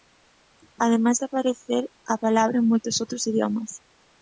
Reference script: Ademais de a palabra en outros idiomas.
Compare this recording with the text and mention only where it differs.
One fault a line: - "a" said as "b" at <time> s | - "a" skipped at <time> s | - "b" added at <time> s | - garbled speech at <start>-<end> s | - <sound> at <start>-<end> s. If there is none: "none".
- "aparecer" added at 1.3 s
- "moitos" added at 2.7 s